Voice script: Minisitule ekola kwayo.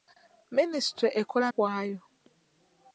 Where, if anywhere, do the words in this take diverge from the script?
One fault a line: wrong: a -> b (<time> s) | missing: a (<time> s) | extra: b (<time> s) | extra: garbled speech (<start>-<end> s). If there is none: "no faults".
no faults